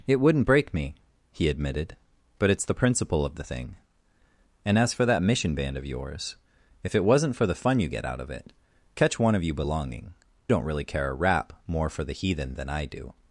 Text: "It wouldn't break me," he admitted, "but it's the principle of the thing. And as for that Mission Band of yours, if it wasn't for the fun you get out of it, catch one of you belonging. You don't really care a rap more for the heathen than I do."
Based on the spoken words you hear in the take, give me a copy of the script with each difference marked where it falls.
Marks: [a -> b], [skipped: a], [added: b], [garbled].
"It wouldn't break me," he admitted, "but it's the principle of the thing. And as for that Mission Band of yours, if it wasn't for the fun you get out of it, catch one of you belonging. [skipped: You] don't really care a rap more for the heathen than I do."